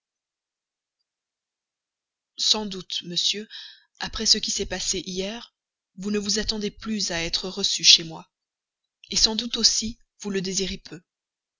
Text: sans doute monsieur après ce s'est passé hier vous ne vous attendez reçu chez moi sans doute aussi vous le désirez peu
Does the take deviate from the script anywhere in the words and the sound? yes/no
yes